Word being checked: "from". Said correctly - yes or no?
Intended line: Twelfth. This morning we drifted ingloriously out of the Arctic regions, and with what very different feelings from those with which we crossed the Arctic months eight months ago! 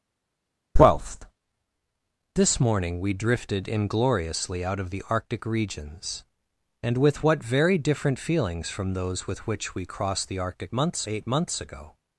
yes